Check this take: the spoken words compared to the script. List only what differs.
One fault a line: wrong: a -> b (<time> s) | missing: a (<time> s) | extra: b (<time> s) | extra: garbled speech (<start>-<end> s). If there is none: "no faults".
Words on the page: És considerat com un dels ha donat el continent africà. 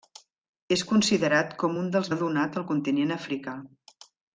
no faults